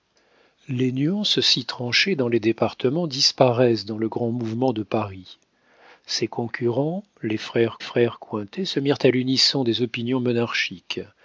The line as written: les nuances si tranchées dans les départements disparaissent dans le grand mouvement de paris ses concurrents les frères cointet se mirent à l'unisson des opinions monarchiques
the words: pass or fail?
fail